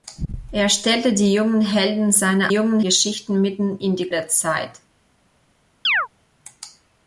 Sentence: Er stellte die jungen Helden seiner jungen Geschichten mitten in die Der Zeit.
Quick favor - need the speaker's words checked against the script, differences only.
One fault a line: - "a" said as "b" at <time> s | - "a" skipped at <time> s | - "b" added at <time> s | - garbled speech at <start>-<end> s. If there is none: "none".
none